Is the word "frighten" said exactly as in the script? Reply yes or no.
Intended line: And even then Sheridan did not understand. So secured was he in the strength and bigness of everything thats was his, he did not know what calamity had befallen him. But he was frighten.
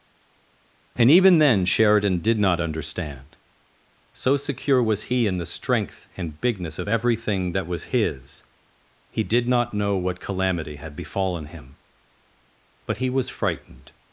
no